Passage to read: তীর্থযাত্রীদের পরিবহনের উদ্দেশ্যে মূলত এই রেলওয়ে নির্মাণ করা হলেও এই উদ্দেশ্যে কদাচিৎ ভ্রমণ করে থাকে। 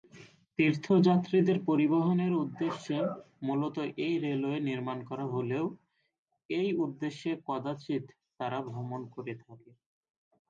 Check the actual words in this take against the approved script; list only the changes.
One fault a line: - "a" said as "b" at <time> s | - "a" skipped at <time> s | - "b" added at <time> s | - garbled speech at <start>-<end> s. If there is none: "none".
- "তারা" added at 8.4 s